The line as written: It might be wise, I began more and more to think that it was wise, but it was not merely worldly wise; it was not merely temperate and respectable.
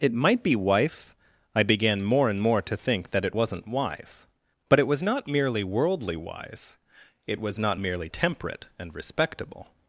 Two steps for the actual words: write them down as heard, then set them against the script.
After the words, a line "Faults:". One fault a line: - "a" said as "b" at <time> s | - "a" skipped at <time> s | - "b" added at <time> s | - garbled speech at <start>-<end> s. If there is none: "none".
It might be wife, I began more and more to think that it wasn't wise, but it was not merely worldly wise; it was not merely temperate and respectable.
Faults:
- "wise" said as "wife" at 0.6 s
- "was" said as "wasn't" at 3.3 s